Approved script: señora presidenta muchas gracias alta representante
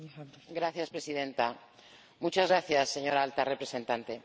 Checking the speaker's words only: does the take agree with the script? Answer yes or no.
no